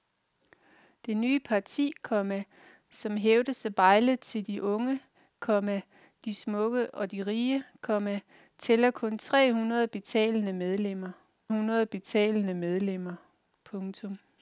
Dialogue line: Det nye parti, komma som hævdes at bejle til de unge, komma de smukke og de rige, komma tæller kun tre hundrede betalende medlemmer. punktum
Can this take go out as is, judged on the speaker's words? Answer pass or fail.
fail